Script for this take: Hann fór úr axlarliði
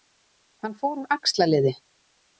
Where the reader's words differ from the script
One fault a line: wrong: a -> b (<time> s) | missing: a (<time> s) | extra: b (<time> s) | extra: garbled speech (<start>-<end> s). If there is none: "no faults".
no faults